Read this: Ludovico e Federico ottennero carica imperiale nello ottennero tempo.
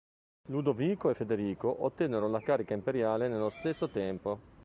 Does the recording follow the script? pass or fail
fail